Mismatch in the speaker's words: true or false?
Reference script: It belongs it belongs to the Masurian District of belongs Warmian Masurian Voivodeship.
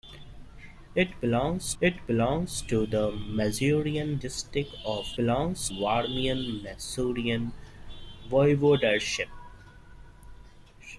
false